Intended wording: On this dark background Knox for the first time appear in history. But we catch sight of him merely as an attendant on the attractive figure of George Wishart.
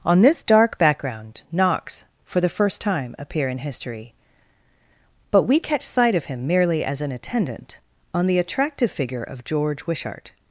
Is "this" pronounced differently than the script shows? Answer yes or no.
no